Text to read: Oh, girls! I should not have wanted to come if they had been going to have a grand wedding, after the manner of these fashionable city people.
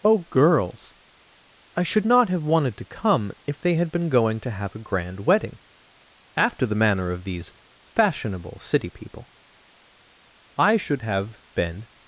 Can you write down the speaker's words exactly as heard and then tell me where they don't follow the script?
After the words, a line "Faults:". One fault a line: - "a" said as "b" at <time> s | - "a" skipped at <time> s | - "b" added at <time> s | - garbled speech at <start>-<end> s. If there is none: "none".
Oh, girls! I should not have wanted to come if they had been going to have a grand wedding, after the manner of these fashionable city people. I should have been
Faults:
- "I should have been" added at 10.6 s